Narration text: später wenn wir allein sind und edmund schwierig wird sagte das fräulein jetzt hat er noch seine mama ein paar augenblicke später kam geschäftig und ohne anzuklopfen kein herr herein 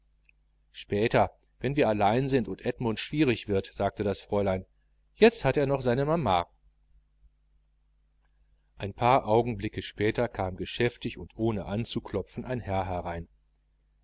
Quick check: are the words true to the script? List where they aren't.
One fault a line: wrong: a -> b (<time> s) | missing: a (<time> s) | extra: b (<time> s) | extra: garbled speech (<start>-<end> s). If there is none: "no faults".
wrong: kein -> ein (12.4 s)